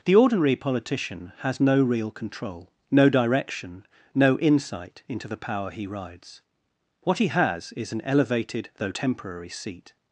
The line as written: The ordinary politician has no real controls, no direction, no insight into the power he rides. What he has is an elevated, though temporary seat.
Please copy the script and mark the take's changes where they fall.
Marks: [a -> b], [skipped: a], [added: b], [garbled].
The ordinary politician has no real [controls, -> control] no direction, no insight into the power he rides. What he has is an elevated, though temporary seat.